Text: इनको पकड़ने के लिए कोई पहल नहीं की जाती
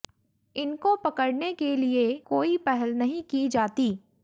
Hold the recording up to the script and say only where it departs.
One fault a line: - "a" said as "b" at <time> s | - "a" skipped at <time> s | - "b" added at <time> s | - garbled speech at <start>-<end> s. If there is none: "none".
none